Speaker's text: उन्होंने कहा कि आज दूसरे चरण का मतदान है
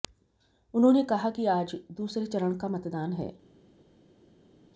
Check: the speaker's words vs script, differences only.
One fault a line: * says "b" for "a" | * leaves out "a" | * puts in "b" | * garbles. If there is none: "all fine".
all fine